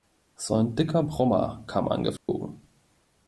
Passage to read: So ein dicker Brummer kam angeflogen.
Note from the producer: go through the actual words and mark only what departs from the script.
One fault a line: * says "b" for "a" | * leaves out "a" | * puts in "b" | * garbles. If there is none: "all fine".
all fine